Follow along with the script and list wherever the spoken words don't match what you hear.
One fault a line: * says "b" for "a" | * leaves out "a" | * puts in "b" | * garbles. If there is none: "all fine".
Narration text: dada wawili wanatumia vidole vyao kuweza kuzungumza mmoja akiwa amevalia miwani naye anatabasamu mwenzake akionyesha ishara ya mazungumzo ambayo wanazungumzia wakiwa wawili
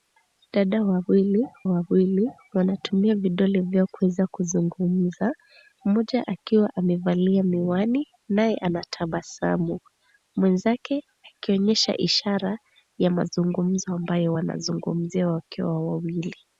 * puts in "wawili"